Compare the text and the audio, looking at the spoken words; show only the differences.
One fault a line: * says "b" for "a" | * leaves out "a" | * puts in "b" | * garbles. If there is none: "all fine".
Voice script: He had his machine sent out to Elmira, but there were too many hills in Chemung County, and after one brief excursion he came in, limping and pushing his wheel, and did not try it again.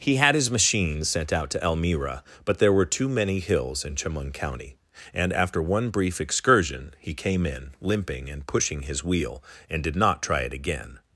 all fine